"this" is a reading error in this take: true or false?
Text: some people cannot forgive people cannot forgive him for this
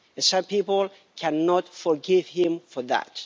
true